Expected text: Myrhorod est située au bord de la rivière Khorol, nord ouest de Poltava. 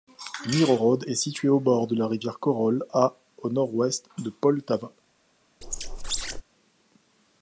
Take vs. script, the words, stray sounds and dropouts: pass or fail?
fail